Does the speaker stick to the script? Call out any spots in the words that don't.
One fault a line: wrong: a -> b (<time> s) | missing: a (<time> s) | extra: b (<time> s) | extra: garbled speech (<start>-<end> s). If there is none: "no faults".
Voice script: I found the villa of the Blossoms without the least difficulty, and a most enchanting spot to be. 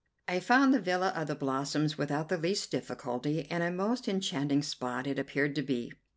extra: it appeared (5.0 s)